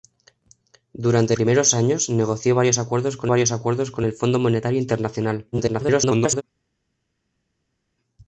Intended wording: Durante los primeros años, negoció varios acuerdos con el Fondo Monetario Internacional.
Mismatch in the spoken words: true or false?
true